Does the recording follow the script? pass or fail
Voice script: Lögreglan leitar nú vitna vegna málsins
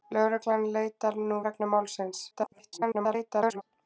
fail